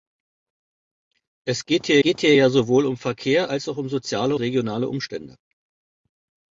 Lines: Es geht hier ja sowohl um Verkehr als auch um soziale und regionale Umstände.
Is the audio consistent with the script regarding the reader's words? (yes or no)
no